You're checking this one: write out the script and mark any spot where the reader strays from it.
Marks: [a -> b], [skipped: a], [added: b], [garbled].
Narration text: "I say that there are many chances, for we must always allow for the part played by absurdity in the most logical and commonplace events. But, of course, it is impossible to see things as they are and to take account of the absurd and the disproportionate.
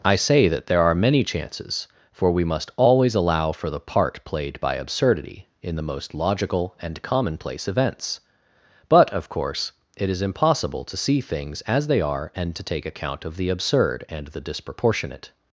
"I say that there are many chances, for we must always allow for the part played by absurdity in the most logical and commonplace events. But, of course, it is impossible to see things as they are and to take account of the absurd and the disproportionate.